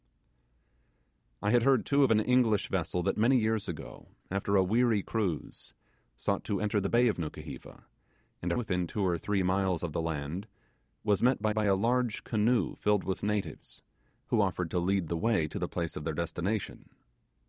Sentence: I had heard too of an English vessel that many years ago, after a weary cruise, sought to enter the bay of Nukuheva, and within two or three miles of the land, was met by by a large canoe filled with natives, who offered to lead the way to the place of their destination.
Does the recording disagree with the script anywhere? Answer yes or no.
no